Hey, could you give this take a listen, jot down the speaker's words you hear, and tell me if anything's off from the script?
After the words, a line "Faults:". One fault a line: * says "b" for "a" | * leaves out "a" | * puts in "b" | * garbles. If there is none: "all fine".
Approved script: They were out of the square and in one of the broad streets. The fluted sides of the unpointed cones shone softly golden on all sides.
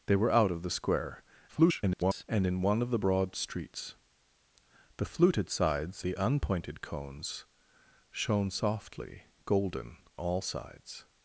They were out of the square [garbled] and in one of the broad streets. The fluted sides the unpointed cones shone softly golden all sides.
Faults:
* garbles
* leaves out "of"
* leaves out "on"